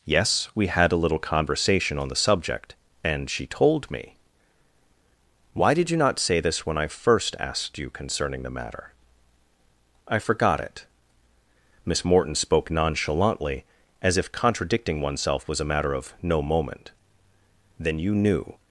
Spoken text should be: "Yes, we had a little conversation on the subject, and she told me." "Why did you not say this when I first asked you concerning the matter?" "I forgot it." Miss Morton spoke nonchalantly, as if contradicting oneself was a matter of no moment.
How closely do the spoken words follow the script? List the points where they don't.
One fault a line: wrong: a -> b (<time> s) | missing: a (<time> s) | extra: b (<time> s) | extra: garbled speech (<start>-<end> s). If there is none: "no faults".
extra: Then you knew (17.8 s)